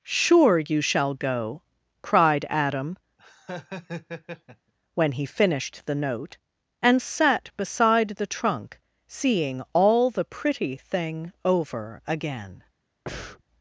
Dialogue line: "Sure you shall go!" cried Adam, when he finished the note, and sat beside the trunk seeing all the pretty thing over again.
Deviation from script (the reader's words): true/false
false